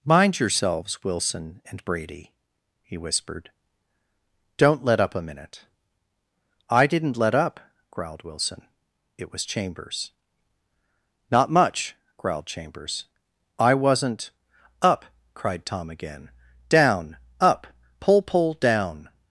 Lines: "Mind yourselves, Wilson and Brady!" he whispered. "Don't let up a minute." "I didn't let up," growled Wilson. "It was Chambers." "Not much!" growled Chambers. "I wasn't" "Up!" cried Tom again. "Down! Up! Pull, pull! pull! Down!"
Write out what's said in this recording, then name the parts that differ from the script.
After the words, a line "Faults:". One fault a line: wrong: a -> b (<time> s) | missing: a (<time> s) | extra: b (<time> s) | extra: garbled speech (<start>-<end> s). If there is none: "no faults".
"Mind yourselves, Wilson and Brady!" he whispered. "Don't let up a minute." "I didn't let up," growled Wilson. "It was Chambers." "Not much!" growled Chambers. "I wasn't" "Up!" cried Tom again. "Down! Up! Pull, pull! Down!"
Faults:
missing: pull (18.6 s)